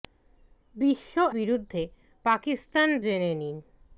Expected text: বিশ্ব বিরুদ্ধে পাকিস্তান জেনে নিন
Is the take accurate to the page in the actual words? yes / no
yes